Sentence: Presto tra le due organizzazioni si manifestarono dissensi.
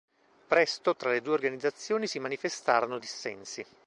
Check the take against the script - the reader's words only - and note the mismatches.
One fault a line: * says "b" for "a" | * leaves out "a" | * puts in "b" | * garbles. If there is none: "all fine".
all fine